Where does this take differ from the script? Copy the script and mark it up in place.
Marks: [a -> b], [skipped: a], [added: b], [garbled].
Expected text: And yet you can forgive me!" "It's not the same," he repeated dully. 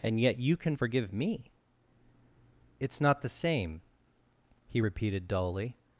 And yet you can forgive me!" "It's not the same," he repeated dully.